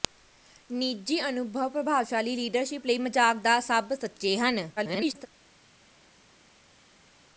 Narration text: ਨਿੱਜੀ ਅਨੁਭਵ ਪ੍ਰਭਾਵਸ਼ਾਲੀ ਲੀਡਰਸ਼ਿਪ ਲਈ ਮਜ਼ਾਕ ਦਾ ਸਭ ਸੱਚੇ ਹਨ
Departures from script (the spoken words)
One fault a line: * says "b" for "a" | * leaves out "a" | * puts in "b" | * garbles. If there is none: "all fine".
* garbles